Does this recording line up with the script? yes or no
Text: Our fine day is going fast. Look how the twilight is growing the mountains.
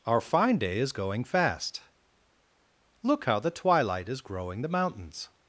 yes